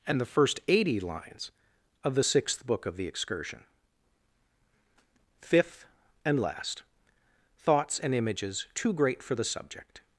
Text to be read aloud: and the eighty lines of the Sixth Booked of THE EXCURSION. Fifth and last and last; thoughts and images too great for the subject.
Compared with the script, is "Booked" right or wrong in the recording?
wrong